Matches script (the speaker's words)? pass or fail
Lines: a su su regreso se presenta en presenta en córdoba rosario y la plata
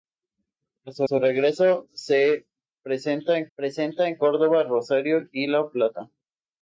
pass